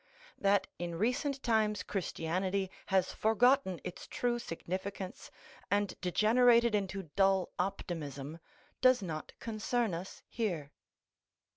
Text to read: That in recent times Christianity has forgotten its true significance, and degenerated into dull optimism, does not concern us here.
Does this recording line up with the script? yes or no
yes